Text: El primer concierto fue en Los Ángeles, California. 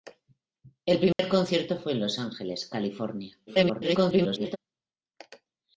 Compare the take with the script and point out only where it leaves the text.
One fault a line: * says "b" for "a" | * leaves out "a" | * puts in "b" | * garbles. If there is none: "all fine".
* garbles